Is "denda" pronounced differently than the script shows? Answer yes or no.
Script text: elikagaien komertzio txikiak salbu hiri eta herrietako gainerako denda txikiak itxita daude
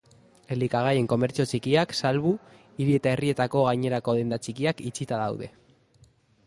no